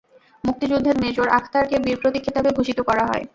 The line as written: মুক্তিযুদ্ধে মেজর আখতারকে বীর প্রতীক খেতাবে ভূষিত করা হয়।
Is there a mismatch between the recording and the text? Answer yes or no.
no